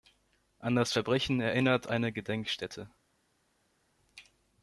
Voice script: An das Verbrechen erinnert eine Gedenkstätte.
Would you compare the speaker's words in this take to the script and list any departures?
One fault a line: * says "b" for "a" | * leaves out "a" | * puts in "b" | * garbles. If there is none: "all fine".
all fine